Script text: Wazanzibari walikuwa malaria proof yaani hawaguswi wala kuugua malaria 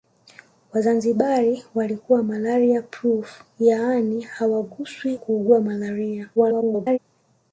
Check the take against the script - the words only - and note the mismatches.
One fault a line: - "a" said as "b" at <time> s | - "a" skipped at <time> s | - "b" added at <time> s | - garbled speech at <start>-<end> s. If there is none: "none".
- "wala" skipped at 5.2 s
- garbled speech at 6.4-7.0 s